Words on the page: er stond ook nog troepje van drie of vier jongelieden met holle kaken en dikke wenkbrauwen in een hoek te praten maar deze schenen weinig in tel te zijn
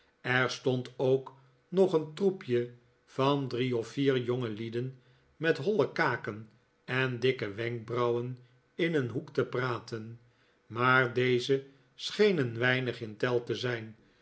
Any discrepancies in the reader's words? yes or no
yes